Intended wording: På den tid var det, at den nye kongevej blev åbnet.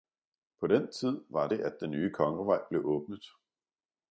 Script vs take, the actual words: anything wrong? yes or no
no